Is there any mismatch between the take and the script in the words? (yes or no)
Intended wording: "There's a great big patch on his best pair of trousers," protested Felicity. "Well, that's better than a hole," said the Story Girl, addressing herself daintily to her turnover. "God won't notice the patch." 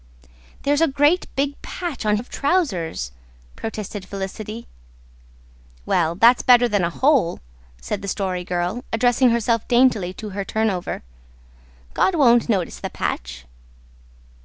yes